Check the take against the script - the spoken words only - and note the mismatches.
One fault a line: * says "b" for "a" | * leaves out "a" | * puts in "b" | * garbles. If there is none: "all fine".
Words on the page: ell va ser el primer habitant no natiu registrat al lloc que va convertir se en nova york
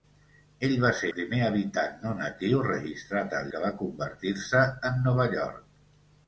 * leaves out "el"
* leaves out "lloc"